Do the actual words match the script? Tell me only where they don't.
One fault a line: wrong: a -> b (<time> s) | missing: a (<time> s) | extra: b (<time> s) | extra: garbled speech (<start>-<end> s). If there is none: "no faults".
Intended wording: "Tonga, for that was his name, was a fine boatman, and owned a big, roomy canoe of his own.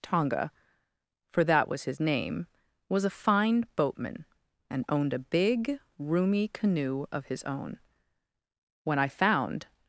extra: When I found (8.8 s)